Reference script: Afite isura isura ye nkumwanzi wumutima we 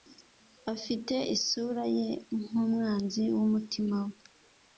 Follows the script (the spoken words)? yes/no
no